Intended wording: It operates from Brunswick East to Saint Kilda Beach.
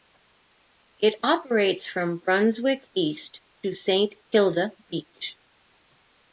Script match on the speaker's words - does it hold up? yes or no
yes